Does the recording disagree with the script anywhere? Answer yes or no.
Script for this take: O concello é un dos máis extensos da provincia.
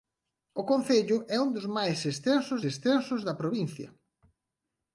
yes